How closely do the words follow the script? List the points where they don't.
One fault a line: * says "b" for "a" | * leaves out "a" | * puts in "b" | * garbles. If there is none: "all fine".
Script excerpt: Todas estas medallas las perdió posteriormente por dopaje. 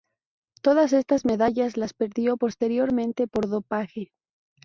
all fine